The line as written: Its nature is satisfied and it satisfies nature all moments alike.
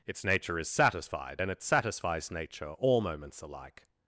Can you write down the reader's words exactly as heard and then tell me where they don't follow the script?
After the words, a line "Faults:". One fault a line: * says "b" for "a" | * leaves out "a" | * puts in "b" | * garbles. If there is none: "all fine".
Its nature is satisfied and it satisfies nature all moments alike.
Faults:
all fine